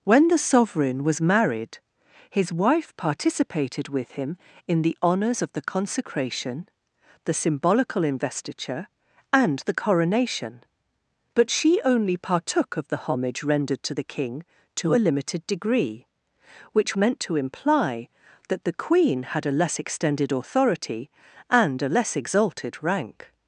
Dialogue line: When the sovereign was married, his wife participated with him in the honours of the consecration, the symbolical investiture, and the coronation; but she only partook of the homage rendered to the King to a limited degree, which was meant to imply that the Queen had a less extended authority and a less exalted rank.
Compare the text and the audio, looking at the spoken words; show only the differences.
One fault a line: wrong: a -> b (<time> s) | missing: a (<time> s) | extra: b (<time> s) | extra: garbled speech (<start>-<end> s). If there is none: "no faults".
missing: was (17.0 s)